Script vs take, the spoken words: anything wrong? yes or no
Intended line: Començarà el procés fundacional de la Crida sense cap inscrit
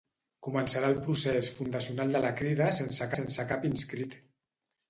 yes